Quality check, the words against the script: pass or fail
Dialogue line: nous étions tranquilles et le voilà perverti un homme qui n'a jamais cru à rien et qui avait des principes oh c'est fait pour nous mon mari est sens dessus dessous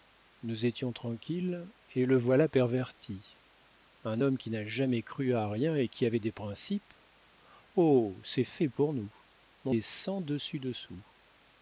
fail